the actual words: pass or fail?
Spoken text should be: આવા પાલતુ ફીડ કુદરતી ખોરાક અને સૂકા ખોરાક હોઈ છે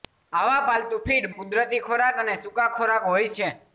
pass